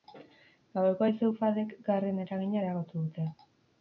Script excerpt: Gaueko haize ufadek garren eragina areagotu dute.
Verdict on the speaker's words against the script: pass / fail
pass